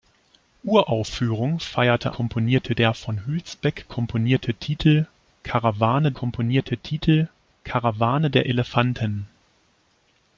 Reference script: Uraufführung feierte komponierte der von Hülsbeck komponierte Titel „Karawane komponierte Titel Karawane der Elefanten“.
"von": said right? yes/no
yes